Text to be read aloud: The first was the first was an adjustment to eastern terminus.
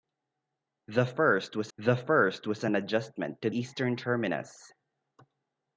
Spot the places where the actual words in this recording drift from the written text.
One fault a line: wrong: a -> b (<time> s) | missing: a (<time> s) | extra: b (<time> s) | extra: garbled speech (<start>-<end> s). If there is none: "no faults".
no faults